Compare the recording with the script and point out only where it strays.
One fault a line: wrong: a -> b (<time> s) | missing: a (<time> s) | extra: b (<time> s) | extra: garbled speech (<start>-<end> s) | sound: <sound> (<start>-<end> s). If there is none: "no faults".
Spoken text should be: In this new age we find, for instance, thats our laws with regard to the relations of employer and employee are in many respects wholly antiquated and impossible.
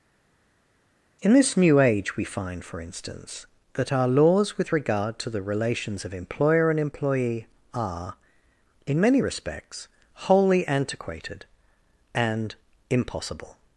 wrong: thats -> that (3.7 s)